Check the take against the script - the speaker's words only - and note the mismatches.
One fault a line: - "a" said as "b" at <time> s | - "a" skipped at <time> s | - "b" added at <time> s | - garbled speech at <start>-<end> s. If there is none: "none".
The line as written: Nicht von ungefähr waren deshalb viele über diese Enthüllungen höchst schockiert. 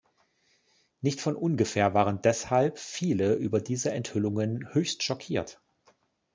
none